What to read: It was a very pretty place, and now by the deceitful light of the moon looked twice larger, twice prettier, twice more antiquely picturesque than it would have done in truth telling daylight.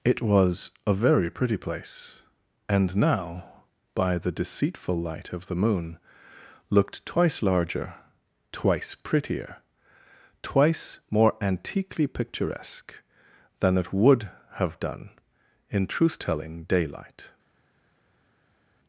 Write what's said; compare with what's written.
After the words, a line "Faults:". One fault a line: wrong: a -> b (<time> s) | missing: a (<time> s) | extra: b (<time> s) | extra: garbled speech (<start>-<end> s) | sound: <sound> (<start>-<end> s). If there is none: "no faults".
It was a very pretty place, and now by the deceitful light of the moon looked twice larger, twice prettier, twice more antiquely picturesque than it would have done in truth telling daylight.
Faults:
no faults